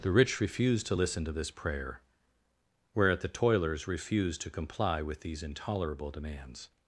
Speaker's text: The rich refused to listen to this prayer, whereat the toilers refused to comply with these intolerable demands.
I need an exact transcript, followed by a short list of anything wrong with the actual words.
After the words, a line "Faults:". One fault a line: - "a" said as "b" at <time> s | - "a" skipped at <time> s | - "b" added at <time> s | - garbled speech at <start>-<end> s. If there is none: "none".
The rich refused to listen to this prayer, whereat the toilers refused to comply with these intolerable demands.
Faults:
none